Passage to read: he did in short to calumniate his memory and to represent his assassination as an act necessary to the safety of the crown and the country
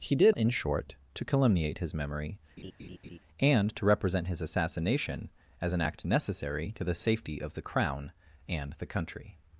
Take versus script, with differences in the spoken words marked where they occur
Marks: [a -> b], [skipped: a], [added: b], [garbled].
he did in short to calumniate his memory and to represent his assassination as an act necessary to the safety of the crown and the country